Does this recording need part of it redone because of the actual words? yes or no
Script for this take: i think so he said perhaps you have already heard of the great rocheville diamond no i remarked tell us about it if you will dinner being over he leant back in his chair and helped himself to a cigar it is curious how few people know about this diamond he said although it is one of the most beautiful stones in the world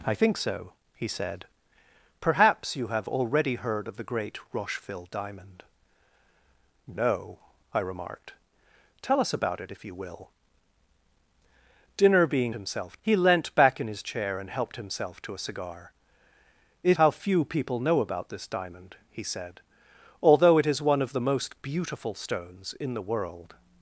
yes